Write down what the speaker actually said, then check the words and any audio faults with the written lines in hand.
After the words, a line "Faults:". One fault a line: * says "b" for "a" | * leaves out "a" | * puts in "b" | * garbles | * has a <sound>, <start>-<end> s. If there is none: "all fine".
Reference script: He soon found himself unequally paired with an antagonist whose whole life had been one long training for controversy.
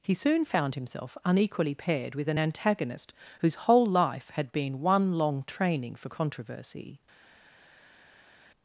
He soon found himself unequally paired with an antagonist whose whole life had been one long training for controversy.
Faults:
all fine